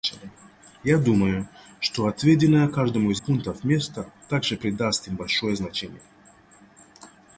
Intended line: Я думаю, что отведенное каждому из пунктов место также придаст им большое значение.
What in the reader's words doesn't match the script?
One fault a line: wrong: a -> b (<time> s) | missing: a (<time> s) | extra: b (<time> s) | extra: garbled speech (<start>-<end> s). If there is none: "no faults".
no faults